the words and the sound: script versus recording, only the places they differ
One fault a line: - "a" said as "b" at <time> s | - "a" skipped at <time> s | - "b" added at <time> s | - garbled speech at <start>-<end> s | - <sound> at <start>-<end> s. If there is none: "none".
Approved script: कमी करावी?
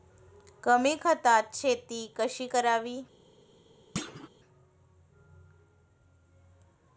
- "खतात शेती कशी" added at 0.9 s
- thud at 4.0-4.3 s